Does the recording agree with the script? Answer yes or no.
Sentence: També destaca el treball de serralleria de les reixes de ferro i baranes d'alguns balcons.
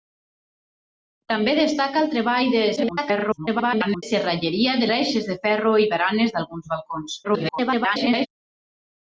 no